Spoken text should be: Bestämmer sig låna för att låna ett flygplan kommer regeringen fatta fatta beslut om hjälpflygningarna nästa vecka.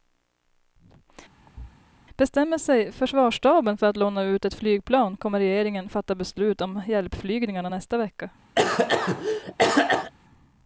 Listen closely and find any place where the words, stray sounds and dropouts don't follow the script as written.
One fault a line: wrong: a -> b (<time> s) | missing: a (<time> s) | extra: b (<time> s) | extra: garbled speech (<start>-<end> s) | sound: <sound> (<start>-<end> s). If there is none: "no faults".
sound: thud (1.5-1.8 s)
wrong: låna -> försvarsstaben (2.9 s)
extra: ut (4.2 s)
missing: fatta (6.1 s)
sound: cough (8.6-10.1 s)